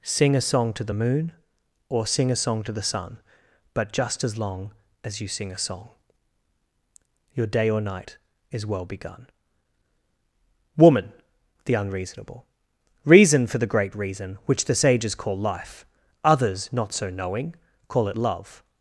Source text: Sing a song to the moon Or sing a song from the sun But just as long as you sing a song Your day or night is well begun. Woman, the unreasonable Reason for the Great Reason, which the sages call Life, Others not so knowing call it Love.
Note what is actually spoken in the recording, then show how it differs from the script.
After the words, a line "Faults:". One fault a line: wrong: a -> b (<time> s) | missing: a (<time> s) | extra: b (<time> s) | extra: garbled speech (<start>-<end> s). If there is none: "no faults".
Sing a song to the moon Or sing a song to the sun But just as long as you sing a song Your day or night is well begun. Woman, the unreasonable Reason for the Great Reason, which the sages call Life, Others not so knowing call it Love.
Faults:
wrong: from -> to (2.6 s)